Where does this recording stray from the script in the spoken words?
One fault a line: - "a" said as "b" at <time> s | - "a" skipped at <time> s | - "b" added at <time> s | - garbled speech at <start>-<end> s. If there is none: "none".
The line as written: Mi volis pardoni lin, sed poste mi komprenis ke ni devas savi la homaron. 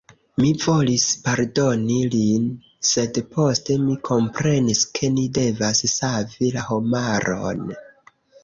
none